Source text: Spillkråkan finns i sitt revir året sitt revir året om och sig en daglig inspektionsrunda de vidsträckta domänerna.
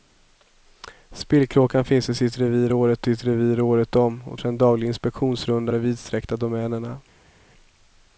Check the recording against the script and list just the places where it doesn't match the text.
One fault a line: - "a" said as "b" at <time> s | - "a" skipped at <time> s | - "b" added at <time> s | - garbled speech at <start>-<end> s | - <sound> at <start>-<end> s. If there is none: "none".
none